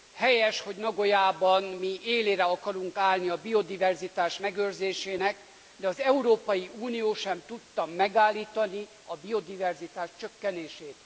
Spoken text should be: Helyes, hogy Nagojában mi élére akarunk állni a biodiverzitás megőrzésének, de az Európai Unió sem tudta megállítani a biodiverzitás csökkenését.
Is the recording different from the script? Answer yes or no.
no